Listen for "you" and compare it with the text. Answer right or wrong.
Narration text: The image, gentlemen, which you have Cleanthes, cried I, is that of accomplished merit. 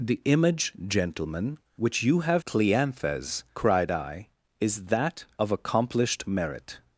right